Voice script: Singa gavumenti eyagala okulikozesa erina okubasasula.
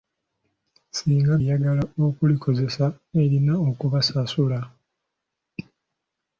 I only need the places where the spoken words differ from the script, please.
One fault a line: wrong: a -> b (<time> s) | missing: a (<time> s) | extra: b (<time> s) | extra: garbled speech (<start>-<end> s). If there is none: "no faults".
missing: gavumenti (1.3 s)